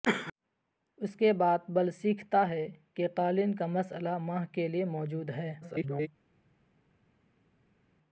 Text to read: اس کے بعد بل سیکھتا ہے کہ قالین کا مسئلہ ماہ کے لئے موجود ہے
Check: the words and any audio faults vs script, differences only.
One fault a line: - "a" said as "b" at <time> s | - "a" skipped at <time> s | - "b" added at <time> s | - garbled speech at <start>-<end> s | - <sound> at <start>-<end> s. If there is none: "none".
- garbled speech at 5.6-6.1 s